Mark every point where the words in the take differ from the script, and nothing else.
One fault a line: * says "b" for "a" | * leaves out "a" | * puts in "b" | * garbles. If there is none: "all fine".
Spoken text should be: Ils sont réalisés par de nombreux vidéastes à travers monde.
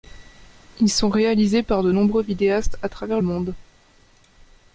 all fine